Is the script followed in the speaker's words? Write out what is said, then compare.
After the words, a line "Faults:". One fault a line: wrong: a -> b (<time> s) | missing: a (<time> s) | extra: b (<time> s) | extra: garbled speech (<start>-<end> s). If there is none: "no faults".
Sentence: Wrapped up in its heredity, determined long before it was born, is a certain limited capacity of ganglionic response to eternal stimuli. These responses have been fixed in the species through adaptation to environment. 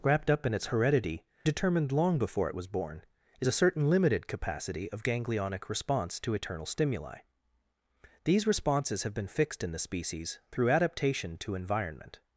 Wrapped up in its heredity, determined long before it was born, is a certain limited capacity of ganglionic response to eternal stimuli. These responses have been fixed in the species through adaptation to environment.
Faults:
no faults